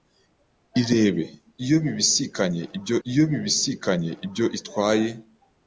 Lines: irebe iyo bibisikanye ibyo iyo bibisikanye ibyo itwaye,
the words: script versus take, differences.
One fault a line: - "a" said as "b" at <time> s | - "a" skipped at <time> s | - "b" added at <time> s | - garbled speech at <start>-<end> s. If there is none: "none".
none